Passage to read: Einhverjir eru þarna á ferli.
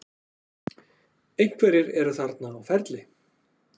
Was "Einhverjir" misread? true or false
false